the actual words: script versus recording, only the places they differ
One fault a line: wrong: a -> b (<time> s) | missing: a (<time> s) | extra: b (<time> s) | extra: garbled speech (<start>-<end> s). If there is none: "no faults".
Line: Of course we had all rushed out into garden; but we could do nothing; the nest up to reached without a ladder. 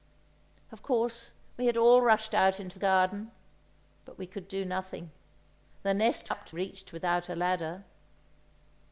no faults